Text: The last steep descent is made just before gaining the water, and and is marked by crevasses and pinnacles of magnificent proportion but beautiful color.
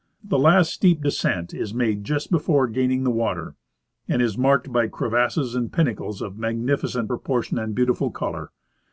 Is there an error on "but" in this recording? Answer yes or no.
yes